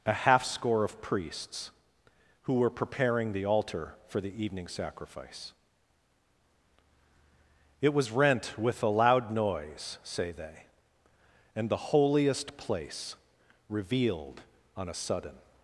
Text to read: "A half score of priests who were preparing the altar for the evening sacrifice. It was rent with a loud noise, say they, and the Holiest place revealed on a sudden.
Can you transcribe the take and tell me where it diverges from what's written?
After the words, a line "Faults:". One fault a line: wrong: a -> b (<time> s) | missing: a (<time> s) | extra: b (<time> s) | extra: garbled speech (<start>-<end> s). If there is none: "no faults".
"A half score of priests who were preparing the altar for the evening sacrifice. It was rent with a loud noise, say they, and the Holiest place revealed on a sudden.
Faults:
no faults